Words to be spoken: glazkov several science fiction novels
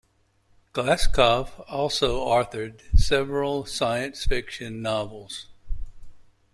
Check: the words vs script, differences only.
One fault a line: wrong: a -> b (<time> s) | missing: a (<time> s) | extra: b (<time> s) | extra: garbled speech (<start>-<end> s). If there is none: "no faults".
extra: also authored (1.7 s)